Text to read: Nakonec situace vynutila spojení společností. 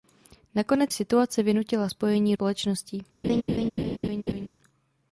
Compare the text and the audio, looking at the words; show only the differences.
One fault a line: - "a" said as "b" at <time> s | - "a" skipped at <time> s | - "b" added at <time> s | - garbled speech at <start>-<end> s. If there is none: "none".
none